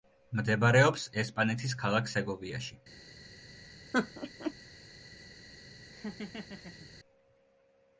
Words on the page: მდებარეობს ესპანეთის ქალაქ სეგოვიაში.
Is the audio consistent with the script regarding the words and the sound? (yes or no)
no